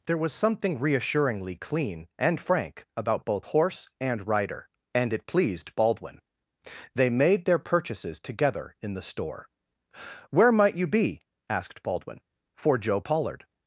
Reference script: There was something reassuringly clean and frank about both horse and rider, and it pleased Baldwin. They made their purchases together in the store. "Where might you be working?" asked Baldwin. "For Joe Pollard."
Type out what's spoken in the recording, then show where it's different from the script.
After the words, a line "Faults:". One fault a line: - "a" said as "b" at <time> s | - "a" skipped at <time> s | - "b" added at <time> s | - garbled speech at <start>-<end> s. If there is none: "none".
There was something reassuringly clean and frank about both horse and rider, and it pleased Baldwin. They made their purchases together in the store. "Where might you be?" asked Baldwin. "For Joe Pollard."
Faults:
- "working" skipped at 11.2 s